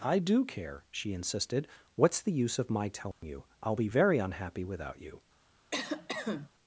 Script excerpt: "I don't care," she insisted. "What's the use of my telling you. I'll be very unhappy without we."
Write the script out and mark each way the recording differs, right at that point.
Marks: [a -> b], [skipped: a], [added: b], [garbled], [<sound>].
"I [don't -> do] care," she insisted. "What's the use of my telling [dropout] you. I'll be very unhappy without [we." -> you] [cough]